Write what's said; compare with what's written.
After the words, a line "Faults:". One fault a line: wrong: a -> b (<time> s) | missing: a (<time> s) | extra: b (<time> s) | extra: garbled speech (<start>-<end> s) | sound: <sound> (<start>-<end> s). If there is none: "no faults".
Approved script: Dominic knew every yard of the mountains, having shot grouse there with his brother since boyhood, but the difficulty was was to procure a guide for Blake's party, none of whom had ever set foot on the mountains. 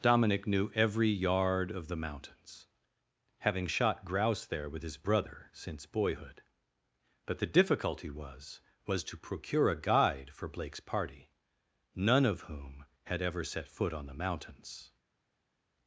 Dominic knew every yard of the mountains, having shot grouse there with his brother since boyhood, but the difficulty was was to procure a guide for Blake's party, none of whom had ever set foot on the mountains.
Faults:
no faults